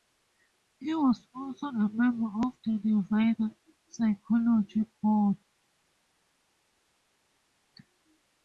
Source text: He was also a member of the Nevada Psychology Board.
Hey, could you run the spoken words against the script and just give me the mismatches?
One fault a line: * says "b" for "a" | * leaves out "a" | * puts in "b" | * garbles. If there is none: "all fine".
all fine